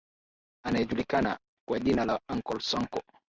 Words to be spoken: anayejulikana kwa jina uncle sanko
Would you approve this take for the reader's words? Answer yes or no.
no